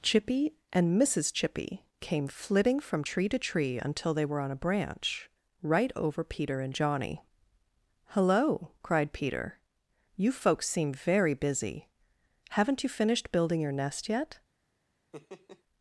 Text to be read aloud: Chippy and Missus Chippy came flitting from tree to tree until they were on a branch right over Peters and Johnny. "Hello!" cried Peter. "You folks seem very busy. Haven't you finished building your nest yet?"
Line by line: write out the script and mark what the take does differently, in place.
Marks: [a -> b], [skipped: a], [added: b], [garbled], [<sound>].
Chippy and Missus Chippy came flitting from tree to tree until they were on a branch right over [Peters -> Peter] and Johnny. "Hello!" cried Peter. "You folks seem very busy. Haven't you finished building your nest yet?" [laugh]